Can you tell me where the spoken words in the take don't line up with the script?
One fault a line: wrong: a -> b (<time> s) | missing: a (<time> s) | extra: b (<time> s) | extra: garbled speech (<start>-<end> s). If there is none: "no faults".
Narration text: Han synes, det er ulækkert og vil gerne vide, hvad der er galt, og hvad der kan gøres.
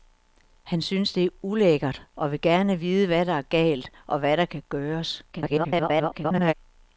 extra: garbled speech (5.3-6.5 s)